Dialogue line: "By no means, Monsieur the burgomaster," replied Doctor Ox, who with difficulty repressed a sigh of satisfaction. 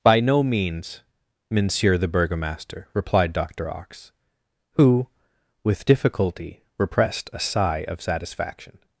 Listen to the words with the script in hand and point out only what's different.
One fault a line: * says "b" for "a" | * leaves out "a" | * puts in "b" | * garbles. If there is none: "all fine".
all fine